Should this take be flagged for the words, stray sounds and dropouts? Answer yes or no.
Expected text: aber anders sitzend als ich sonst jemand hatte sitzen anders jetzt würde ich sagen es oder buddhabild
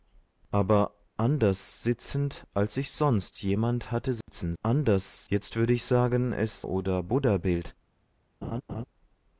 yes